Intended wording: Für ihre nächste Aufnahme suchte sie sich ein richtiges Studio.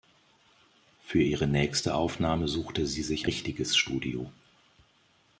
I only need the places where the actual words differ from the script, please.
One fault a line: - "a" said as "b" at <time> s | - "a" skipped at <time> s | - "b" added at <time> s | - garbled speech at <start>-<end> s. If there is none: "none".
- "ein" skipped at 3.3 s